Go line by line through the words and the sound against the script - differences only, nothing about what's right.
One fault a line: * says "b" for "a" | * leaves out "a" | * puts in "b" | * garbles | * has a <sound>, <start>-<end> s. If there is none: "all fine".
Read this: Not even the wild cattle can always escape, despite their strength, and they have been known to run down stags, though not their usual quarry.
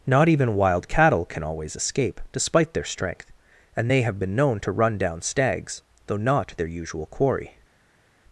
* leaves out "the"